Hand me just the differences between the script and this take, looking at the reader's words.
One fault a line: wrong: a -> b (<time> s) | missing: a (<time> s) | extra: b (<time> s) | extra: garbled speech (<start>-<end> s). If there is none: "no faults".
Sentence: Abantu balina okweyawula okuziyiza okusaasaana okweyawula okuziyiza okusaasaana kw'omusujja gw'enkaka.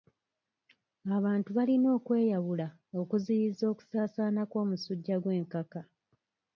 missing: okweyawula okuziyiza okusaasaana (4.4 s)